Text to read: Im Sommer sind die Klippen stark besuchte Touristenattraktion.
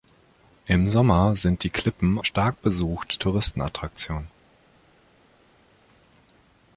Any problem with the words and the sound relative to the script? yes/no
no